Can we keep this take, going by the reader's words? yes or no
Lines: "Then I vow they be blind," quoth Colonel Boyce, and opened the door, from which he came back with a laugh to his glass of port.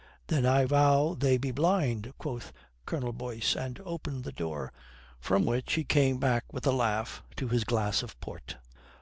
yes